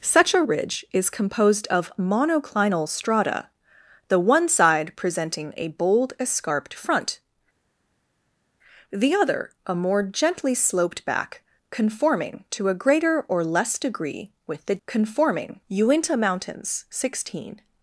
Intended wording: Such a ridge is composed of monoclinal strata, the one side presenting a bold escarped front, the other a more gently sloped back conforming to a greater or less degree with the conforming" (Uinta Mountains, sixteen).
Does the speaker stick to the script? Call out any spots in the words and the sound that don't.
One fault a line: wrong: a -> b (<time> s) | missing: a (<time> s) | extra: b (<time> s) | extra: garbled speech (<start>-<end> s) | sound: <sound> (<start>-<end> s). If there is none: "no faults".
no faults